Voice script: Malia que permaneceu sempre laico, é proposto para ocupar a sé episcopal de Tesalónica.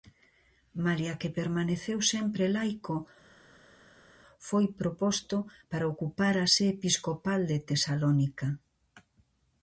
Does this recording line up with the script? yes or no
no